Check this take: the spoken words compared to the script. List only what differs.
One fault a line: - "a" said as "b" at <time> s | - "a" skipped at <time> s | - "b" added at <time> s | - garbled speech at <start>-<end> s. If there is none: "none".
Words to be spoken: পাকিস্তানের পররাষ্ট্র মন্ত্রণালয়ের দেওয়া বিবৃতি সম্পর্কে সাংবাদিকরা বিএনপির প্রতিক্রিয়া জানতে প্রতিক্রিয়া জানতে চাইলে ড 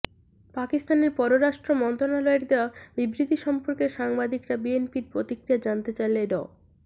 - "প্রতিক্রিয়া জানতে" skipped at 5.9 s